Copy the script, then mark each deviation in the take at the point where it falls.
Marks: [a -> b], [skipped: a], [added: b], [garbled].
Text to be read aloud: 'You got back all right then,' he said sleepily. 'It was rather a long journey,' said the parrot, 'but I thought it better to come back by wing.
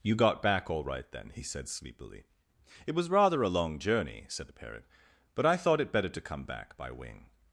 'You got back all right then,' he said sleepily. 'It was rather a long journey,' said the parrot, 'but I thought it better to come back by wing.